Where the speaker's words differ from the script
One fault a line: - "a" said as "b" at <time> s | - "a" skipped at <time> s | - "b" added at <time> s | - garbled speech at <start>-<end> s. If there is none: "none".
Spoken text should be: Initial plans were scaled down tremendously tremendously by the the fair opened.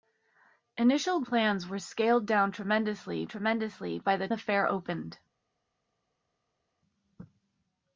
none